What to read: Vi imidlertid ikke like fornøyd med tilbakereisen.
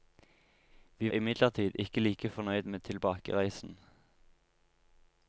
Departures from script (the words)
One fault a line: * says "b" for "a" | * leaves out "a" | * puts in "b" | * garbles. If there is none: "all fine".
all fine